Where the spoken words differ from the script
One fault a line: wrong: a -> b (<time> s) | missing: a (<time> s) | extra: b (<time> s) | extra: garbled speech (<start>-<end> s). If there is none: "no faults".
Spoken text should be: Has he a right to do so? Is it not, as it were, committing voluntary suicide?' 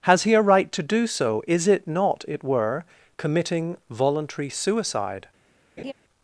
missing: as (2.2 s)